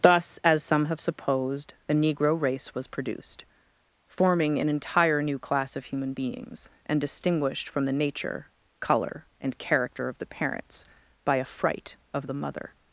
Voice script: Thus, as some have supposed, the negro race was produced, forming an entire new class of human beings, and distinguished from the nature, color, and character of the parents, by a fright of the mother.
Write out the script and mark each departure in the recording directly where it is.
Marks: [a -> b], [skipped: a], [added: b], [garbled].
Thus, as some have supposed, the negro race was produced, forming an entire new class of human beings, and distinguished from the nature, color, and character of the parents, by a fright of the mother.